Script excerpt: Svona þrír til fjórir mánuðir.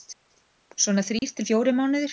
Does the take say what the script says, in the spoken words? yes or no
yes